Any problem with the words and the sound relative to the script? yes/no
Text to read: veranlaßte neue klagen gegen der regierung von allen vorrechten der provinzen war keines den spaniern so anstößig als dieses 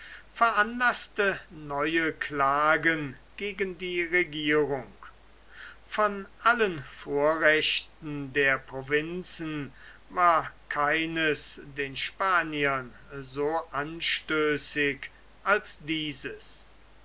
yes